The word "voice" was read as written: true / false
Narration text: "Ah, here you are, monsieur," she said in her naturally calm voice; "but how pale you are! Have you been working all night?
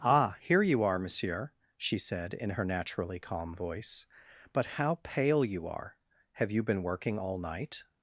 true